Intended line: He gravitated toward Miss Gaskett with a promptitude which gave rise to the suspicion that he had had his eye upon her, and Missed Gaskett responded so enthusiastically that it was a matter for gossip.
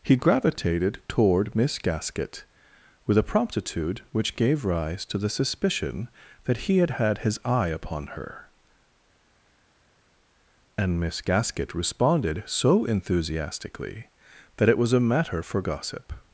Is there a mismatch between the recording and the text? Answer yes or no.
yes